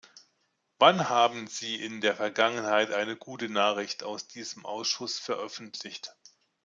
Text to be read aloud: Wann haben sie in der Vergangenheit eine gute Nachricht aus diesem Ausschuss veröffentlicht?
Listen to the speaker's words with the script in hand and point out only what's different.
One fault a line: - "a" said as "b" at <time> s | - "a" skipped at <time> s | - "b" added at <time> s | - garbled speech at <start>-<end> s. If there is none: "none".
none